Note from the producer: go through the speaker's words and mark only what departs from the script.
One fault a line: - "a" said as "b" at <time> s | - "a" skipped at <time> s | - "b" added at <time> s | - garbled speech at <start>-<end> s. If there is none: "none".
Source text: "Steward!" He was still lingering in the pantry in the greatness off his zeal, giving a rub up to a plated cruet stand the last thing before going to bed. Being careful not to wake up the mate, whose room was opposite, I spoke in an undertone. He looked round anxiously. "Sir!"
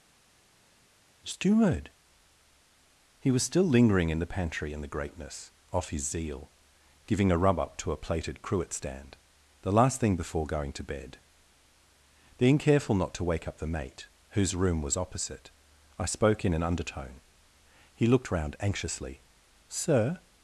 none